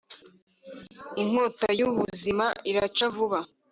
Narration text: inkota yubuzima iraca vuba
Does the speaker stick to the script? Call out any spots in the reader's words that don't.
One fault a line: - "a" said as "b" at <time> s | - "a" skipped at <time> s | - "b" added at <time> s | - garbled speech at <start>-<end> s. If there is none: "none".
none